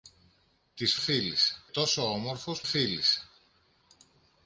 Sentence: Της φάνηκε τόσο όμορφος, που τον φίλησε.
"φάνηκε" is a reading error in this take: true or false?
true